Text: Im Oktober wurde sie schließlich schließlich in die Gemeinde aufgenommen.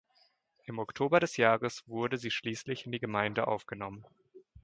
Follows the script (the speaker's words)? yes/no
no